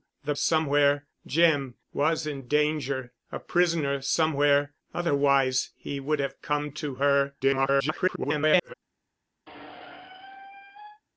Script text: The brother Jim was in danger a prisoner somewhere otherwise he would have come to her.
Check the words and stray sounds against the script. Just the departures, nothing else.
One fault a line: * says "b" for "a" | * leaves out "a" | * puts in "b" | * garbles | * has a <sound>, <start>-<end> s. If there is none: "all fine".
* says "somewhere" for "brother"
* garbles
* has a squeak, 9.5-11.0 s